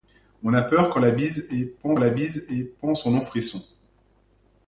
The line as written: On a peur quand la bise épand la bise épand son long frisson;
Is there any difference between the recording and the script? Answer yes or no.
no